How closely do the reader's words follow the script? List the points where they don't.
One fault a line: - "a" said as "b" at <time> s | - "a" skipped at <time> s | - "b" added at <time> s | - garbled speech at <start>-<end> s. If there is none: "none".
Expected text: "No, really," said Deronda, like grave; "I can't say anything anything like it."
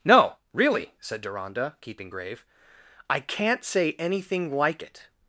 - "like" said as "keeping" at 1.8 s
- "anything" skipped at 4.5 s